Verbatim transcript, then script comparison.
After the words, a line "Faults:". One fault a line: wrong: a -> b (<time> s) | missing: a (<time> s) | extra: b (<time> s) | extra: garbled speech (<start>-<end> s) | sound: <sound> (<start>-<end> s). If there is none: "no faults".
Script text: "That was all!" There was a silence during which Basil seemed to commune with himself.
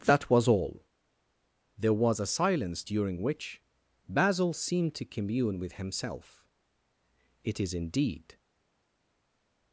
"That was all!" There was a silence during which Basil seemed to commune with himself. "It is indeed
Faults:
extra: It is indeed (7.4 s)